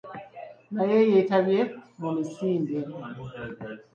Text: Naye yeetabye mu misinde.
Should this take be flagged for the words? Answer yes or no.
no